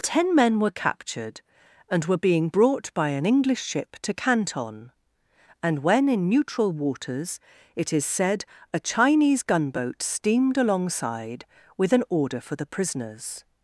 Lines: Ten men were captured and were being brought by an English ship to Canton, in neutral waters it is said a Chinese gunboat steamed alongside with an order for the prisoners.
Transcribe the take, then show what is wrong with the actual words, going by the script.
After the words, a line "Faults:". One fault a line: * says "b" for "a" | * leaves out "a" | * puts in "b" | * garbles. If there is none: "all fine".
Ten men were captured and were being brought by an English ship to Canton, and when in neutral waters it is said a Chinese gunboat steamed alongside with an order for the prisoners.
Faults:
* puts in "and when"